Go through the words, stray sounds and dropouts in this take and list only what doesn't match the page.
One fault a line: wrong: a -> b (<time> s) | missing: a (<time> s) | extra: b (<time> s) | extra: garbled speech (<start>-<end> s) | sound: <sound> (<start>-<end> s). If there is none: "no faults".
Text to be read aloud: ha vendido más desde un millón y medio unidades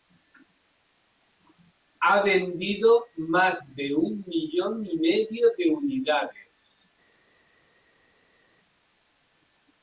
wrong: desde -> de (3.8 s)
extra: de (5.5 s)